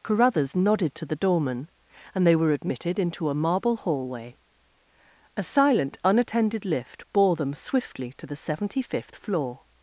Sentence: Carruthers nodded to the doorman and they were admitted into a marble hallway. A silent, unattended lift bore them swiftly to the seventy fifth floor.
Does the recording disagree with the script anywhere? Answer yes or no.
no